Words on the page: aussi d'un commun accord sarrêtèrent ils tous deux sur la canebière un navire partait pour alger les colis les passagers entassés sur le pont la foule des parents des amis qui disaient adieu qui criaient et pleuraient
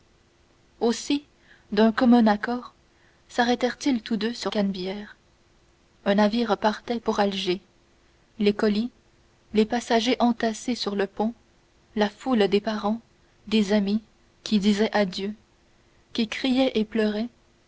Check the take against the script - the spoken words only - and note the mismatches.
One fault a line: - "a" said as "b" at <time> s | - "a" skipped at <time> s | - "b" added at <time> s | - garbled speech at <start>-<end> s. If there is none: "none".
- "la" skipped at 4.5 s